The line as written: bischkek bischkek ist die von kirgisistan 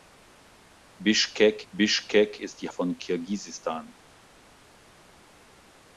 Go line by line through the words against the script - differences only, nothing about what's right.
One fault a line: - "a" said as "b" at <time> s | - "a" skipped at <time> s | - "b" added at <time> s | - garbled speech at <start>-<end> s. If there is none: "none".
none